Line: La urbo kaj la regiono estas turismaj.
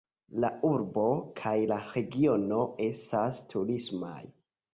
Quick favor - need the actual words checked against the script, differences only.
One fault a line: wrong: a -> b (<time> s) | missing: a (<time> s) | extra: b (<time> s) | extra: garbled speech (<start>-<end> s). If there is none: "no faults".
no faults